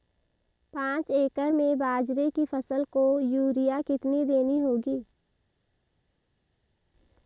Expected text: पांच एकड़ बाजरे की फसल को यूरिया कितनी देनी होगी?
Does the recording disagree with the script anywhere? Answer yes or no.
yes